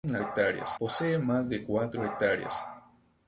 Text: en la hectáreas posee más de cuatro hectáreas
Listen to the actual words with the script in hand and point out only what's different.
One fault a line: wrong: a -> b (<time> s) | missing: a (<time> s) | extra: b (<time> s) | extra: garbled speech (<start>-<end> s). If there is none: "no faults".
no faults